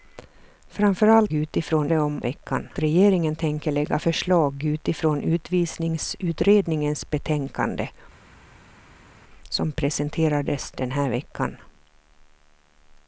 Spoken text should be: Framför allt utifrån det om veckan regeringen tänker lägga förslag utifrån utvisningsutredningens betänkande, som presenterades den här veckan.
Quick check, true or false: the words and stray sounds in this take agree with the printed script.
true